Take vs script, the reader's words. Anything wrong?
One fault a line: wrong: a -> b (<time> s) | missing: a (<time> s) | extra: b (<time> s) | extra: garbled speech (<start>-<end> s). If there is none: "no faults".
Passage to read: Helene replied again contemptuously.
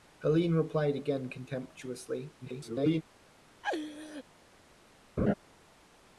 extra: garbled speech (2.4-3.0 s)